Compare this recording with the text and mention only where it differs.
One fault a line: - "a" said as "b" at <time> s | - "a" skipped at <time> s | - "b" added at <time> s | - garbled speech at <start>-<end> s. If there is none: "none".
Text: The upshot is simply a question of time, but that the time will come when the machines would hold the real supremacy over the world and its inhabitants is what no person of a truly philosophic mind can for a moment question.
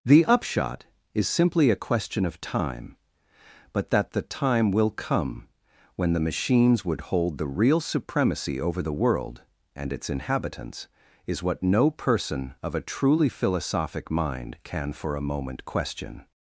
none